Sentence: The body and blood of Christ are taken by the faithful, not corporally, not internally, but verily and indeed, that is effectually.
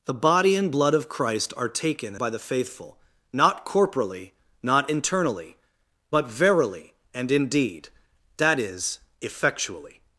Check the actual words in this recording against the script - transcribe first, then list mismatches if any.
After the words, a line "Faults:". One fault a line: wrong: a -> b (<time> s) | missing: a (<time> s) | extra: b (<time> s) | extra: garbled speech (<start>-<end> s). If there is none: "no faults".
The body and blood of Christ are taken by the faithful, not corporally, not internally, but verily and indeed, that is effectually.
Faults:
no faults